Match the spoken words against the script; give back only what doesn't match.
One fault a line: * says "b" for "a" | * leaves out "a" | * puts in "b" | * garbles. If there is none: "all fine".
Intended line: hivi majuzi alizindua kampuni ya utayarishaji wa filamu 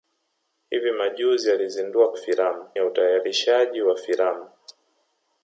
* says "filamu" for "kampuni"